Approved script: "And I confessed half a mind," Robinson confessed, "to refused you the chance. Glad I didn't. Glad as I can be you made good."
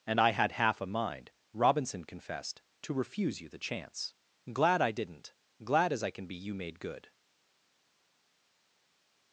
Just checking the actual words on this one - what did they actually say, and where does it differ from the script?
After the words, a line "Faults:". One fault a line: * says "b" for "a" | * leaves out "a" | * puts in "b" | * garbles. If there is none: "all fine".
"And I had half a mind," Robinson confessed, "to refuse you the chance. Glad I didn't. Glad as I can be you made good."
Faults:
* says "had" for "confessed"
* says "refuse" for "refused"